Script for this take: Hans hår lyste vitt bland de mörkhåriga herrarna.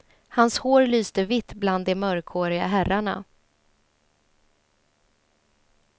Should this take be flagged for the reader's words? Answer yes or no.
no